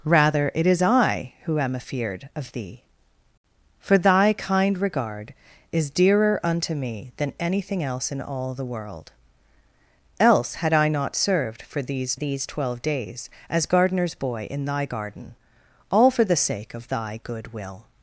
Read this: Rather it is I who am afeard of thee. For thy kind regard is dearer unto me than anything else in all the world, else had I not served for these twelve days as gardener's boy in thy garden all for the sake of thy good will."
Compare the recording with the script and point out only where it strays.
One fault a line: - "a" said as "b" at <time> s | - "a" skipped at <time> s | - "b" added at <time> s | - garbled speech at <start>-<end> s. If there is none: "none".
- "these" added at 12.1 s